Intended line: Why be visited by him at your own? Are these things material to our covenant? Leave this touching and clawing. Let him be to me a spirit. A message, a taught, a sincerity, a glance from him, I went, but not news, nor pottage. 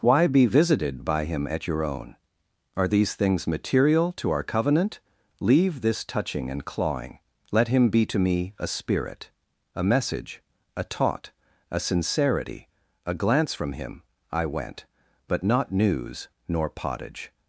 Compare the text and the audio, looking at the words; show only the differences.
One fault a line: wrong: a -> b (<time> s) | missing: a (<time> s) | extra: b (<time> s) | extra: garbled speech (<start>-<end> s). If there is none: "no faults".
no faults